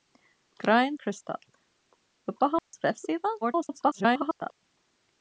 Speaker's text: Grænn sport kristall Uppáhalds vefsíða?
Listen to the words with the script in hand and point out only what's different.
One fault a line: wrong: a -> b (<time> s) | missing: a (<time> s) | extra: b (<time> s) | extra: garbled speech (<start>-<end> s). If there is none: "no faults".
missing: sport (1.0 s)
extra: garbled speech (3.4-4.6 s)